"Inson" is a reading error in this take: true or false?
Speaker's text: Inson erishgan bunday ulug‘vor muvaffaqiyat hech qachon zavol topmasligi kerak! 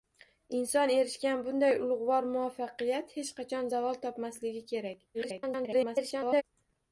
false